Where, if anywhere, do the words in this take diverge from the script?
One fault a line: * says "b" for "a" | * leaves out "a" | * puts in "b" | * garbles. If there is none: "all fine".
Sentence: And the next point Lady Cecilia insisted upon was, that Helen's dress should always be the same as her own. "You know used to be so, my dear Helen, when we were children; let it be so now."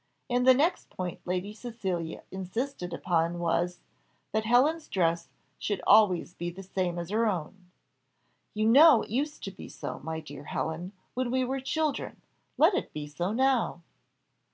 all fine